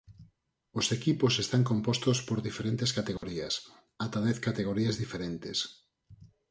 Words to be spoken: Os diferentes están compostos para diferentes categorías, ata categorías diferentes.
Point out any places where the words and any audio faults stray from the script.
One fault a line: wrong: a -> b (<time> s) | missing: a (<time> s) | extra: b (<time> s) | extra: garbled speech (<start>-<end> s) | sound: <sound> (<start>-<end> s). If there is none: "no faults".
wrong: diferentes -> equipos (1.0 s)
wrong: para -> por (2.3 s)
sound: dropout (3.2-3.2 s)
extra: dez (4.3 s)